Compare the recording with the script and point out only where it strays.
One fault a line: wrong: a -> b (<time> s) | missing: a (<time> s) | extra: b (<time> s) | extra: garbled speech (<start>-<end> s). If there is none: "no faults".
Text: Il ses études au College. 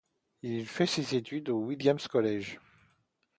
extra: fait (0.6 s)
extra: Williams (1.6 s)